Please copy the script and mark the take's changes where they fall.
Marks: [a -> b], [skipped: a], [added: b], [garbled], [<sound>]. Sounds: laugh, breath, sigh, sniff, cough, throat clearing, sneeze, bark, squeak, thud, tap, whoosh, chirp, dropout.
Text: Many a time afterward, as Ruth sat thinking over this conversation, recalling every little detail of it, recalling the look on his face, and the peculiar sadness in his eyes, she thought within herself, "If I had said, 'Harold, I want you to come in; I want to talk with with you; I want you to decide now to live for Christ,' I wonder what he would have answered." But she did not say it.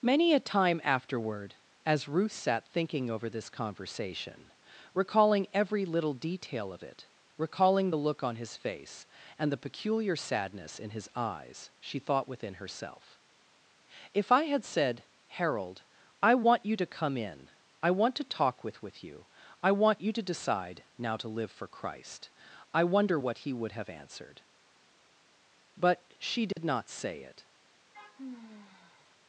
Many a time afterward, as Ruth sat thinking over this conversation, recalling every little detail of it, recalling the look on his face, and the peculiar sadness in his eyes, she thought within herself, "If I had said, 'Harold, I want you to come in; I want to talk with with you; I want you to decide now to live for Christ,' I wonder what he would have answered." But she did [dropout] not say it. [sigh]